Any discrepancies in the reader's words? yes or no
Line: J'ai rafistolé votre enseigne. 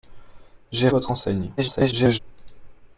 yes